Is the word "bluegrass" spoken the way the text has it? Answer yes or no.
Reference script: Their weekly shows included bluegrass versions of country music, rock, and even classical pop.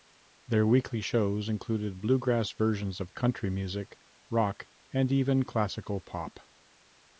yes